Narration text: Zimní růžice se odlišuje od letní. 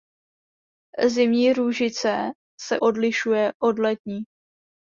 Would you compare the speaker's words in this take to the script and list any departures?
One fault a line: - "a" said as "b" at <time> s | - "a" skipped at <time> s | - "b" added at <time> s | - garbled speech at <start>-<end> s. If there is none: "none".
none